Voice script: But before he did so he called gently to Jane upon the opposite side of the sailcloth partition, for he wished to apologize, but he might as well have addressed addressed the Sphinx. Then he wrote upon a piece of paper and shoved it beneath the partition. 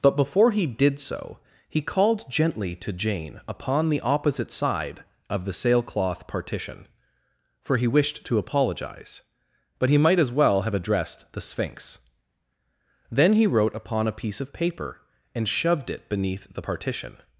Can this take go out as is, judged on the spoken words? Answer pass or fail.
fail